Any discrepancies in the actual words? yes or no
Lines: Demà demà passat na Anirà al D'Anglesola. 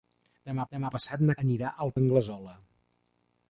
no